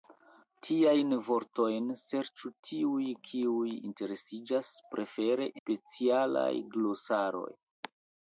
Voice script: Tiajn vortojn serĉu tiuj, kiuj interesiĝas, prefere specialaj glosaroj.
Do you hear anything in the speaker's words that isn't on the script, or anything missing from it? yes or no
no